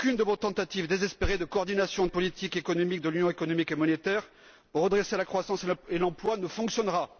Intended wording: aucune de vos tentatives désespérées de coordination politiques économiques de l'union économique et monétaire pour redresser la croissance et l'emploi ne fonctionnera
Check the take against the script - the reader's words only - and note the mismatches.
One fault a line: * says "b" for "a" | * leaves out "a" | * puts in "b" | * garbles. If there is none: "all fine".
all fine